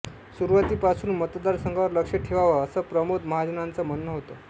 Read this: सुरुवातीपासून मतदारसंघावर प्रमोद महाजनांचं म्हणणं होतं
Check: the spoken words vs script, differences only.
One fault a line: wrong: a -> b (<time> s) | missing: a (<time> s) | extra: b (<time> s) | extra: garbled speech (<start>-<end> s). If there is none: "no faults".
extra: लक्ष ठेवावं असं (1.9 s)